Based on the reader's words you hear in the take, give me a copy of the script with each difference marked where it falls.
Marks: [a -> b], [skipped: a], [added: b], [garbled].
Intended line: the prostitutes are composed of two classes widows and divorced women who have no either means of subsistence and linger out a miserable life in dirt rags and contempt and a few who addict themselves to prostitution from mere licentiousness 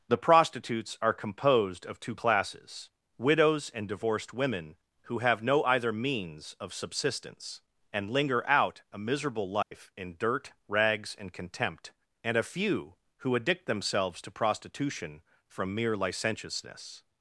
the prostitutes are composed of two classes widows and divorced women who have no either means of subsistence and linger out a miserable life in dirt rags and contempt and a few who addict themselves to prostitution from mere licentiousness